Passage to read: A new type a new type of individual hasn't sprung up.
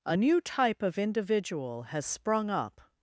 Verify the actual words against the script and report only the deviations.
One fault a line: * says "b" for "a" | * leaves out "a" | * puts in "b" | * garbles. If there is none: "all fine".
* leaves out "a new type"
* says "has" for "hasn't"